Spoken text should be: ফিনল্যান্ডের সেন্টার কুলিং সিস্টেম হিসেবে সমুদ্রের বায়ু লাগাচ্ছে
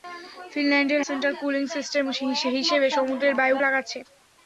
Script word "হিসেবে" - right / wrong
right